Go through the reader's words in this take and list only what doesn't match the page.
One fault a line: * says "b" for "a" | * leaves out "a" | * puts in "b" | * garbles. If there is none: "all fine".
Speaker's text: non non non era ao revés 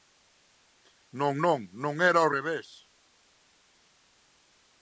all fine